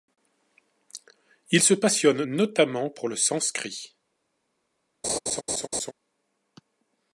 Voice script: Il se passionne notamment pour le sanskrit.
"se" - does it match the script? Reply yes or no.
yes